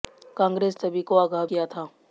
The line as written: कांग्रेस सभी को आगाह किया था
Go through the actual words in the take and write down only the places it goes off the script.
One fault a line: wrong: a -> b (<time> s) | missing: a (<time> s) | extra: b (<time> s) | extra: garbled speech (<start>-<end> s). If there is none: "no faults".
no faults